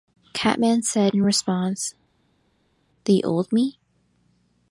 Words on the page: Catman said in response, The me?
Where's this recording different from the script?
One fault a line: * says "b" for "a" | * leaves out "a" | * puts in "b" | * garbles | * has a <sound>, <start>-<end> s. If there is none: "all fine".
* puts in "old"